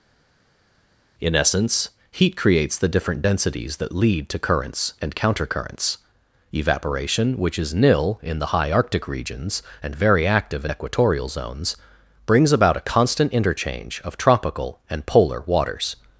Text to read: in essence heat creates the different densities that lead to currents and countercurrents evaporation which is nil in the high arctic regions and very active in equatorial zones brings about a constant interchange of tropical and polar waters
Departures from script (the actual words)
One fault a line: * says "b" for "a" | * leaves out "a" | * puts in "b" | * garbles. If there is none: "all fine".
all fine